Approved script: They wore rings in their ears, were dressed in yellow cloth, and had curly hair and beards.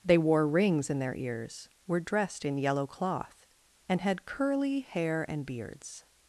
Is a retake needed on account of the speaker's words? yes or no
no